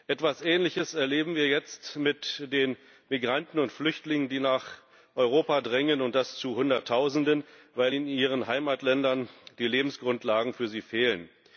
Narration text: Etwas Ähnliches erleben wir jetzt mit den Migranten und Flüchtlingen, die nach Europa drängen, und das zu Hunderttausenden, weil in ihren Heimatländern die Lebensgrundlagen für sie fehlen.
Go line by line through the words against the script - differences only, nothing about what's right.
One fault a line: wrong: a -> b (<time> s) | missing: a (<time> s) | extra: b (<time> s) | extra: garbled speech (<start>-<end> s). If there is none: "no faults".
no faults